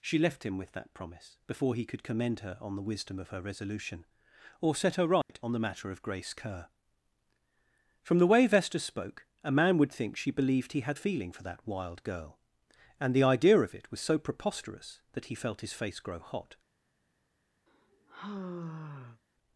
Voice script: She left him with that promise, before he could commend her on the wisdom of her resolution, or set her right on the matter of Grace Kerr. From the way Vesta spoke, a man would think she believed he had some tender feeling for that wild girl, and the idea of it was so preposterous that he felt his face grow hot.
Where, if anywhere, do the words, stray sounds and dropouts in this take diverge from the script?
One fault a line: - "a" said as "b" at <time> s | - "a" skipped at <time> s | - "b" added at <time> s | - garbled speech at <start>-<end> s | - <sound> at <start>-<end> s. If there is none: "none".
- dropout at 5.2-5.3 s
- "some tender" skipped at 11.0 s
- sigh at 17.7-19.2 s